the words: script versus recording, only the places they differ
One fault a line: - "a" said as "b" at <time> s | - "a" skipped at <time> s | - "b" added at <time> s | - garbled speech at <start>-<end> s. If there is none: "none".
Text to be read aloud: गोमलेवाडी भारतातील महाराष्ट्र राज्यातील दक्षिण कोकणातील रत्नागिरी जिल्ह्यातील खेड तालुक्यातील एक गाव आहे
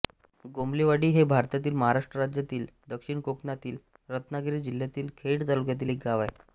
- "हे" added at 1.1 s